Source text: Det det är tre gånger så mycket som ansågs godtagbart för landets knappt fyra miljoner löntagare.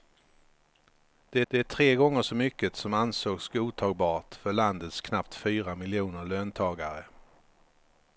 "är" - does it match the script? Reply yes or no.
yes